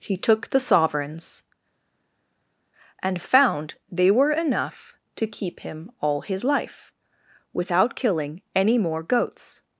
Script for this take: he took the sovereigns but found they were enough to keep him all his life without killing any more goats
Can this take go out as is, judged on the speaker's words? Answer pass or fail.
fail